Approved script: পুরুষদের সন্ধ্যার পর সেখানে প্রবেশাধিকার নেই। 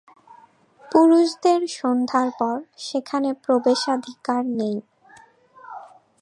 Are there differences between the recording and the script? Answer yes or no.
no